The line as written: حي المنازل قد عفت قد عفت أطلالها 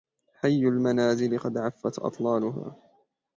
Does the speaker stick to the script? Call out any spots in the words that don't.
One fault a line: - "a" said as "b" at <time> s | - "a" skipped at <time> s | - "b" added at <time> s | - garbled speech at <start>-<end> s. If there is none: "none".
- "قد عفت" skipped at 2.0 s